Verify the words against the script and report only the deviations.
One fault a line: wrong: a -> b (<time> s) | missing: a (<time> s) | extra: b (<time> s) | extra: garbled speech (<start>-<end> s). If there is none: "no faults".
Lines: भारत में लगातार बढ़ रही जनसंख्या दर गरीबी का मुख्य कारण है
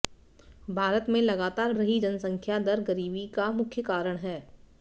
missing: बढ़ (1.7 s)